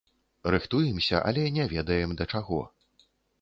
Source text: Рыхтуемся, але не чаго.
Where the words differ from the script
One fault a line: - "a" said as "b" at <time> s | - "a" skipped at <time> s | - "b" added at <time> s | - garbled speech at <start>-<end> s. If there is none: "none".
- "ведаем да" added at 1.8 s